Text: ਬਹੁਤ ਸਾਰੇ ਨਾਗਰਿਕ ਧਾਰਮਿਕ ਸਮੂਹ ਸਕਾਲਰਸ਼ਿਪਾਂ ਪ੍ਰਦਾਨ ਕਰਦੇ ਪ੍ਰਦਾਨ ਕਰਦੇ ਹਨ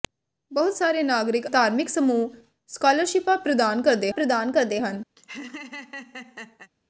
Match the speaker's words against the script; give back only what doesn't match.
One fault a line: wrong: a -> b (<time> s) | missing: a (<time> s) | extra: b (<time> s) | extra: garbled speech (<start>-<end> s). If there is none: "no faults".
no faults